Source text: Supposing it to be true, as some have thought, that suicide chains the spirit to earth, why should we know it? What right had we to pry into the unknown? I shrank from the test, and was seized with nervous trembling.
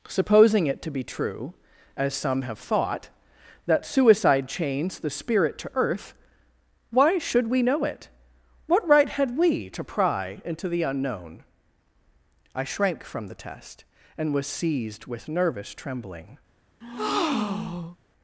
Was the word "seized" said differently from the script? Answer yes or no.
no